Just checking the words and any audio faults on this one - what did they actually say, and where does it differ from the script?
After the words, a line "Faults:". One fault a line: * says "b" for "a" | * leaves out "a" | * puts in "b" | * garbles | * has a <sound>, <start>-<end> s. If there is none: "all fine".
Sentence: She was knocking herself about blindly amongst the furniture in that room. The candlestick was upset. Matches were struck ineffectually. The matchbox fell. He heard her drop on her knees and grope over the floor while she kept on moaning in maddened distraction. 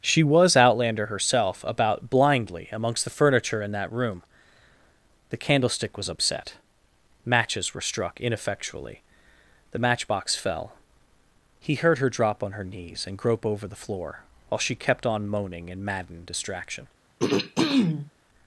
She was outlander herself about blindly amongst the furniture in that room. The candlestick was upset. Matches were struck ineffectually. The matchbox fell. He heard her drop on her knees and grope over the floor while she kept on moaning in maddened distraction.
Faults:
* says "outlander" for "knocking"
* has a throat clearing, 17.2-18.1 s